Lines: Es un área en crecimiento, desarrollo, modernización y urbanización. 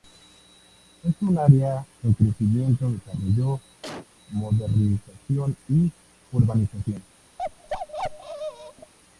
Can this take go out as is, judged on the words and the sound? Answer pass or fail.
fail